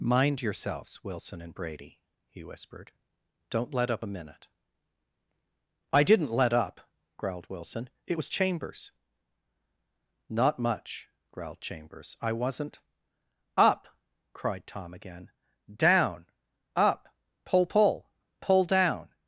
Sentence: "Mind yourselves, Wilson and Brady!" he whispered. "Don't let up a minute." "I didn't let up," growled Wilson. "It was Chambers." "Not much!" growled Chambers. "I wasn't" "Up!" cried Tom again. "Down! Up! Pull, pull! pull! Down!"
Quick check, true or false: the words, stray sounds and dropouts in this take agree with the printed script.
true